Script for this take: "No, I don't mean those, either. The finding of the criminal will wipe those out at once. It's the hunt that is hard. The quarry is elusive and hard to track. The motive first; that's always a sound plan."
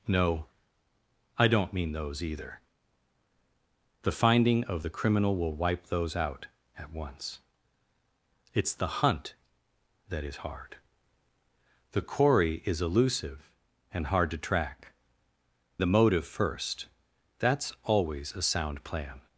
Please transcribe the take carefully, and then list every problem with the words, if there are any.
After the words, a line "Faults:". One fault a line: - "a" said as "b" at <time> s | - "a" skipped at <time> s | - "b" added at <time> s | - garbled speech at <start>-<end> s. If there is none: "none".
"No, I don't mean those, either. The finding of the criminal will wipe those out at once. It's the hunt that is hard. The quarry is elusive and hard to track. The motive first; that's always a sound plan."
Faults:
none